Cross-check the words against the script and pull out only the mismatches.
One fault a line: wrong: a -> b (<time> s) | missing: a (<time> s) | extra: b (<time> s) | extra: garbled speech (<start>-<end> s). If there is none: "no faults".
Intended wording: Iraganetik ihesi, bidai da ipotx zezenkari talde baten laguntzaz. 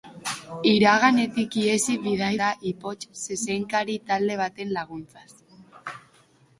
no faults